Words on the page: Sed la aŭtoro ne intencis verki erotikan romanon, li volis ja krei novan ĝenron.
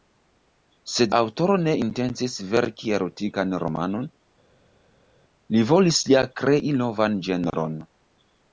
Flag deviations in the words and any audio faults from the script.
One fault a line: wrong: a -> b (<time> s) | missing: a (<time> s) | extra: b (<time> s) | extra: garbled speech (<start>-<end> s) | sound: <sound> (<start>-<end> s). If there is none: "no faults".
missing: la (1.1 s)